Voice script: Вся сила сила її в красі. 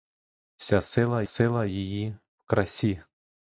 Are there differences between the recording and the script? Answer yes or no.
no